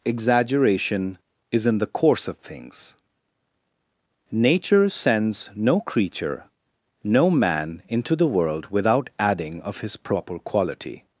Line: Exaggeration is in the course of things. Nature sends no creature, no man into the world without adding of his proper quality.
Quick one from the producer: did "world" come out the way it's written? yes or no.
yes